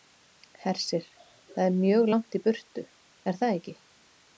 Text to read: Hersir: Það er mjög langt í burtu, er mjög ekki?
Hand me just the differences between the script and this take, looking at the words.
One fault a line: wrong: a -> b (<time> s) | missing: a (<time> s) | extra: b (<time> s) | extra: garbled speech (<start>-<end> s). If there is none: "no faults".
wrong: mjög -> það (3.4 s)